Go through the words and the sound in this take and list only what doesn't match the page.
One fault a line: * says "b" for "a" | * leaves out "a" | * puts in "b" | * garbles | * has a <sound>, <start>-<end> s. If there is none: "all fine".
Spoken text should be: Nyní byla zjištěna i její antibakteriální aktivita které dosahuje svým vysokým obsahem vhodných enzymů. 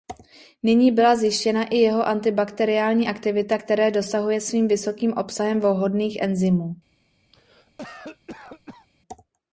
* says "jeho" for "její"
* has a cough, 7.3-8.9 s